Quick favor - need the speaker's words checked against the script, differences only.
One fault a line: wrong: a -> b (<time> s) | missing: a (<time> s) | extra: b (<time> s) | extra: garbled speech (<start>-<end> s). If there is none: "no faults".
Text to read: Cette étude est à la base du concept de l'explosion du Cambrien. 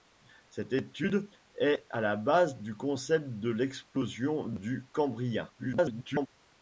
extra: garbled speech (5.6-6.3 s)